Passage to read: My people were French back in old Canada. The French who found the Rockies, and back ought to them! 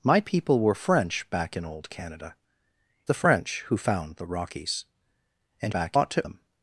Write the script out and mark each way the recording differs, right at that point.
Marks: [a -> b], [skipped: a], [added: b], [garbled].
My people were French back in old Canada. The French who found the Rockies, and back ought to them!